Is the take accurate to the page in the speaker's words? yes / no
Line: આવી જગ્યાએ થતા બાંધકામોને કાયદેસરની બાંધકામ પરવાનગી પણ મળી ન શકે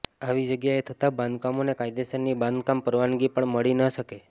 yes